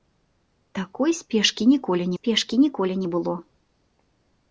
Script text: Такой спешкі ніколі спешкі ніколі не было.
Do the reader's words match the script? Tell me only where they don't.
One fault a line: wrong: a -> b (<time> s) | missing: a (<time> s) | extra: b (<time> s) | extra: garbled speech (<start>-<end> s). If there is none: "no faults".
no faults